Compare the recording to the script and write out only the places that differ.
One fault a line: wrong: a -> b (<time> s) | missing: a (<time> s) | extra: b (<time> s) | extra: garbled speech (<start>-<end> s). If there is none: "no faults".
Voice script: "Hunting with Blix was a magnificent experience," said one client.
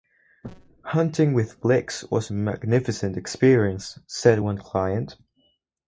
no faults